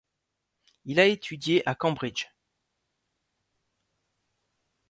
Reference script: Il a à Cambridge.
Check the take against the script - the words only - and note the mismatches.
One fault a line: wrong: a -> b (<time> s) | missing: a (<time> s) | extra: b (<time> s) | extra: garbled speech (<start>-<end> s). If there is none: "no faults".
extra: étudié (1.1 s)